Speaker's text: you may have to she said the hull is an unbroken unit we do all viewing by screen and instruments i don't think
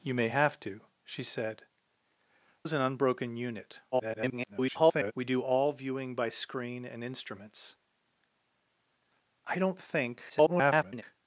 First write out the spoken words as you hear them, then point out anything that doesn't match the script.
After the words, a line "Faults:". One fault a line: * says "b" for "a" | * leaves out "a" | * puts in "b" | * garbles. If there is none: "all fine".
you may have to she said is an unbroken unit [garbled] we do all viewing by screen and instruments i don't think [garbled]
Faults:
* leaves out "the hull"
* garbles
* garbles